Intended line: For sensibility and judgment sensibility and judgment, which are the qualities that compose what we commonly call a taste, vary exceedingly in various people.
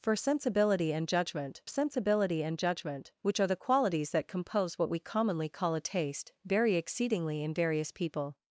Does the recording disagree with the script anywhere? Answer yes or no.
no